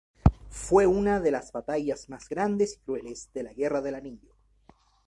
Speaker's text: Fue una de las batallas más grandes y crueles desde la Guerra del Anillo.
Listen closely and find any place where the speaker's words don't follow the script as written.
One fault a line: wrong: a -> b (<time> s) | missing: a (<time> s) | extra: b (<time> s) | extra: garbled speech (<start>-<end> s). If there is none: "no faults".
wrong: desde -> de (3.3 s)